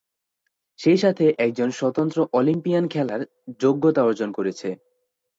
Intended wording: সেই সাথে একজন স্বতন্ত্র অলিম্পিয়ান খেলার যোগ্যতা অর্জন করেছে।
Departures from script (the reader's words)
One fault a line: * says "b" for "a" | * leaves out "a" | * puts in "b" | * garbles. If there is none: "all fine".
all fine